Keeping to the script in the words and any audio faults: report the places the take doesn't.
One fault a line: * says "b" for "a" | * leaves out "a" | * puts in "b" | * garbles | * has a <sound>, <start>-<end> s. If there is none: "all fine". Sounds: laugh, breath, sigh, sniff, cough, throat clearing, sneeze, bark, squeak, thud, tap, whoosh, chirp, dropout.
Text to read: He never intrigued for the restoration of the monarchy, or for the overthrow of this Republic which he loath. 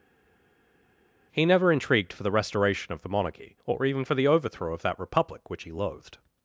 * puts in "even"
* says "that" for "this"
* says "loathed" for "loath"